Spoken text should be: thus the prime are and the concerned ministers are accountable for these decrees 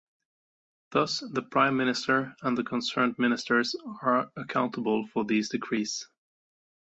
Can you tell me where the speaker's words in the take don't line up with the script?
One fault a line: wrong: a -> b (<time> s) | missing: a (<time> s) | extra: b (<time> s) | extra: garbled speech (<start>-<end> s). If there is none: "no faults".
wrong: are -> minister (1.8 s)